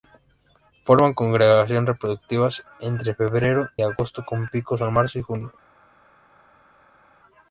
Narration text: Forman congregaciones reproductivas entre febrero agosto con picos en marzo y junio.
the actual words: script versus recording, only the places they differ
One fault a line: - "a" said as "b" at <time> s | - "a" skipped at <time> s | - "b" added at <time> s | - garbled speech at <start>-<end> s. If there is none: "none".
none